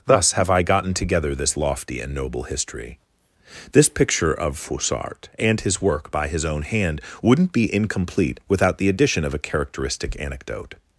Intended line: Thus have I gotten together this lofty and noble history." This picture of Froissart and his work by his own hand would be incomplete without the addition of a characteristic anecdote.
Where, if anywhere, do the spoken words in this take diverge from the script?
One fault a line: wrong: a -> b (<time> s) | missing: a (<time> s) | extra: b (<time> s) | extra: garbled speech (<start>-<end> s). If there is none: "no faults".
wrong: would -> wouldn't (7.2 s)